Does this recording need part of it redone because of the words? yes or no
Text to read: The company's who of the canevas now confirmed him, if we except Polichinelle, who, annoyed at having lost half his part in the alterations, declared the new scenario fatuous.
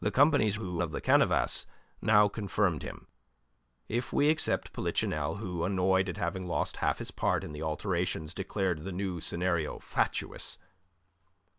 no